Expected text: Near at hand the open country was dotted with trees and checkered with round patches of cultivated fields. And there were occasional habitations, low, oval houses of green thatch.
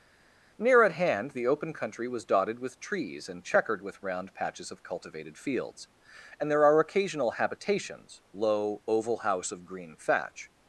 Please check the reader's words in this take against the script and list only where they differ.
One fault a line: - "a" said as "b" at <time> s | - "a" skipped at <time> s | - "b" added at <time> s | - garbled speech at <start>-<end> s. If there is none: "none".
- "were" said as "are" at 6.6 s
- "houses" said as "house" at 9.2 s